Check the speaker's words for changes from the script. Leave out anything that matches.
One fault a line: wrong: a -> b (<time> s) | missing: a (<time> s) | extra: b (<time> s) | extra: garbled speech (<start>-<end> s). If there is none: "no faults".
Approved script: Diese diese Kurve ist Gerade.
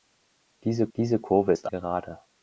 no faults